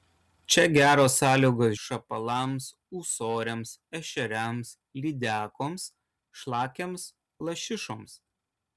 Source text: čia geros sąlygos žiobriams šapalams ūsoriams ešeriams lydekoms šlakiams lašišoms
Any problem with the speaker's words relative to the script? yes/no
yes